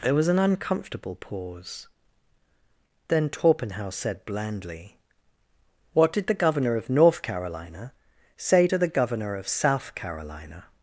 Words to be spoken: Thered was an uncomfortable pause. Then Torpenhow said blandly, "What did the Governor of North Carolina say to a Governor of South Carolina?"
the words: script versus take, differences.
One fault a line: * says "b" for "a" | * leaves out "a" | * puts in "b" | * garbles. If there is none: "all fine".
* says "There" for "Thered"
* says "the" for "a"